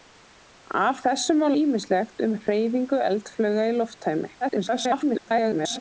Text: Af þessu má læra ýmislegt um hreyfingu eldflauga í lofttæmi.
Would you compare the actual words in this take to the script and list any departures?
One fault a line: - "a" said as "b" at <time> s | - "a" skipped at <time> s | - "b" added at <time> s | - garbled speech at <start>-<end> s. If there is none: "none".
- "læra" skipped at 1.5 s
- garbled speech at 4.4-5.8 s